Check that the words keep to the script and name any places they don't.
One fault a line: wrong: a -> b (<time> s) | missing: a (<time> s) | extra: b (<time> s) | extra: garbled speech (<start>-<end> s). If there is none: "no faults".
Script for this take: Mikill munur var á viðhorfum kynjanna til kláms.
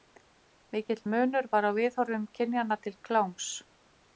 no faults